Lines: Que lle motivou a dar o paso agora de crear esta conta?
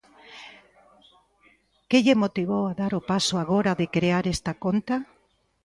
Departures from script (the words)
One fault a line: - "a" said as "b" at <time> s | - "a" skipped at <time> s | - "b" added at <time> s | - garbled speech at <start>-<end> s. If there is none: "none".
none